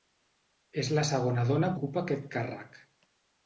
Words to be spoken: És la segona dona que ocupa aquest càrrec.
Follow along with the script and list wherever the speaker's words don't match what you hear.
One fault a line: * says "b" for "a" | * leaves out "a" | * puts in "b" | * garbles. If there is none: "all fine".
* leaves out "que"